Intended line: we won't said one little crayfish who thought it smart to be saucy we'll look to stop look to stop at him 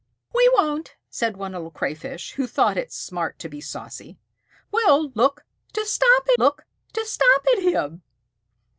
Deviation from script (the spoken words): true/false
false